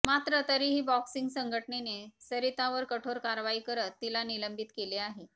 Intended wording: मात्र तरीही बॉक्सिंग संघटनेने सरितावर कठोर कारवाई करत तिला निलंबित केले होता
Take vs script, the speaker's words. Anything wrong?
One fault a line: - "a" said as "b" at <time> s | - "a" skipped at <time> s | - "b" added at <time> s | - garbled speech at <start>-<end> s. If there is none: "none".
- "होता" said as "आहे" at 5.0 s